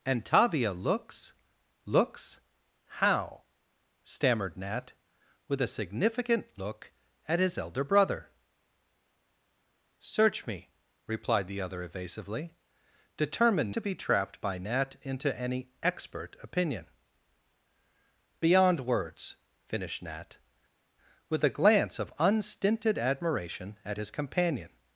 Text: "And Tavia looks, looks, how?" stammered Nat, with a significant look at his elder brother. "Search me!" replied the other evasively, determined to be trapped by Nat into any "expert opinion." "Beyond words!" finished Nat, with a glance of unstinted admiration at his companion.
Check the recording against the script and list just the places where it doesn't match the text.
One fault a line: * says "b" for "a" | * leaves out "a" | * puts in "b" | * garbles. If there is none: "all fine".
all fine